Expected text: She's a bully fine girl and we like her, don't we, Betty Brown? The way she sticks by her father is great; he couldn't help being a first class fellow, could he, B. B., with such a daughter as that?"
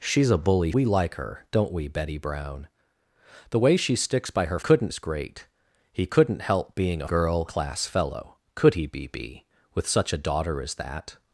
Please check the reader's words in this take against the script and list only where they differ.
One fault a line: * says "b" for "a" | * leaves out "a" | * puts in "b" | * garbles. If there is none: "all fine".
* leaves out "fine girl and"
* says "couldn't" for "father"
* says "girl" for "first"